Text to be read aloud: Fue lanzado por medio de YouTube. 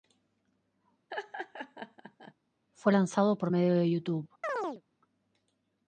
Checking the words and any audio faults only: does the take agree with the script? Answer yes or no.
no